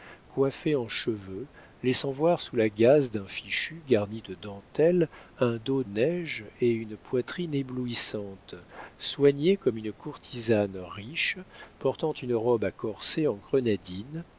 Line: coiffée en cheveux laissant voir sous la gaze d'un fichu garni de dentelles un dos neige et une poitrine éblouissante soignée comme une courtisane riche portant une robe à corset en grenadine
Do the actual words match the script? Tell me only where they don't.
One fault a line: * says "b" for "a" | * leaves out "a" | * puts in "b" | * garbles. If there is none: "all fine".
all fine